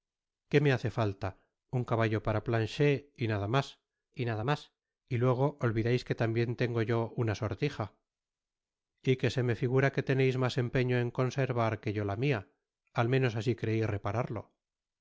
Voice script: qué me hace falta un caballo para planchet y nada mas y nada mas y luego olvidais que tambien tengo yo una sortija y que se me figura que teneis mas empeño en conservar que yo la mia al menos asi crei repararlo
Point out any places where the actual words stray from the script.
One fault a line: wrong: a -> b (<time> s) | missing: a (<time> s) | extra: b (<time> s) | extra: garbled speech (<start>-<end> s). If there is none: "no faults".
no faults